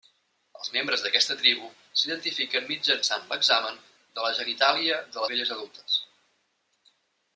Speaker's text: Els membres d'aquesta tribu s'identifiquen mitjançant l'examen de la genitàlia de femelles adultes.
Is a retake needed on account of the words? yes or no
no